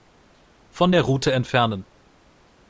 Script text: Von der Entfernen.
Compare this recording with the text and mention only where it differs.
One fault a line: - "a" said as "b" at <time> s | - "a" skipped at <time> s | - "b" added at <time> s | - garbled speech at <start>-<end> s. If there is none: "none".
- "Route" added at 1.0 s